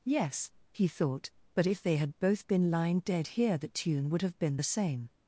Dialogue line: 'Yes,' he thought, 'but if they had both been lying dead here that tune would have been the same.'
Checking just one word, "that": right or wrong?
wrong